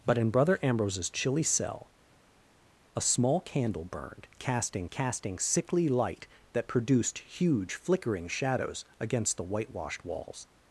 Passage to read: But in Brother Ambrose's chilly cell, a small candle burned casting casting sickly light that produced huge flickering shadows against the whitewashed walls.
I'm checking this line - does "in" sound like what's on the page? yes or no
yes